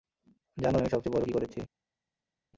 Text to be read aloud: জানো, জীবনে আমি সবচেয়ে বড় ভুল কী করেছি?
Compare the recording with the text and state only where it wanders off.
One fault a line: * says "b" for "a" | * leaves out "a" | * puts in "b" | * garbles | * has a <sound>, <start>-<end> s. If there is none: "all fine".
* leaves out "জীবনে"
* leaves out "ভুল"